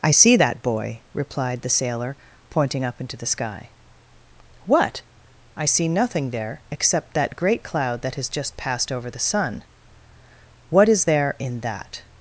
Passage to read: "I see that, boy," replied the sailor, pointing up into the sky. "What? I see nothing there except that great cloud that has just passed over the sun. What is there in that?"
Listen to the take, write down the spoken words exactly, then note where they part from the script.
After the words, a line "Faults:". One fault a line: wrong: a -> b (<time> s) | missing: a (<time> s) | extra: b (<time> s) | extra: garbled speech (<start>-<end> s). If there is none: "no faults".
"I see that, boy," replied the sailor, pointing up into the sky. "What? I see nothing there except that great cloud that has just passed over the sun. What is there in that?"
Faults:
no faults